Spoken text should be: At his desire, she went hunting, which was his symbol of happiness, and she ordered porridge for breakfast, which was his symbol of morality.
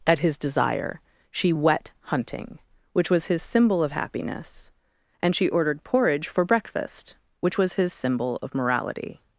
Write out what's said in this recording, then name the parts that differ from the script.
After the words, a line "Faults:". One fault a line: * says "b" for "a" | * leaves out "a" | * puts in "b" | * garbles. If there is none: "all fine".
At his desire, she wet hunting, which was his symbol of happiness, and she ordered porridge for breakfast, which was his symbol of morality.
Faults:
* says "wet" for "went"